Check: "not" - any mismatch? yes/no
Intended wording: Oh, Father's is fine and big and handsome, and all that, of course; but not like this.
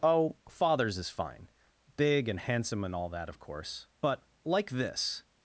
yes